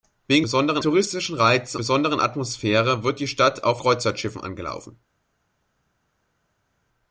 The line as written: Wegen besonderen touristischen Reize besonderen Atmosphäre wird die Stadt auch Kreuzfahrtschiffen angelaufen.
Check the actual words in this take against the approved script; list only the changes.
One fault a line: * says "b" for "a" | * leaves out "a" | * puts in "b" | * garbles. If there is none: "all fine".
all fine